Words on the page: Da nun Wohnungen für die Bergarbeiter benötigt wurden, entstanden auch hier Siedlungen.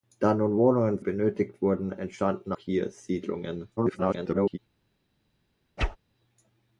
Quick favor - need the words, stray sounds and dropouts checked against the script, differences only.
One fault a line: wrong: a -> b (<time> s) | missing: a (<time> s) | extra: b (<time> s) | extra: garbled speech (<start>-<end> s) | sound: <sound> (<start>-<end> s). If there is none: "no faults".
missing: für die Bergarbeiter (1.0 s)
missing: auch (2.5 s)
extra: garbled speech (3.8-4.6 s)
sound: whoosh (5.8-6.0 s)